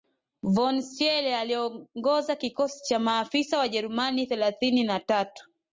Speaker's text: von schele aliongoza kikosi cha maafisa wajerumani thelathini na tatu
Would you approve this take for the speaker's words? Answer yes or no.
yes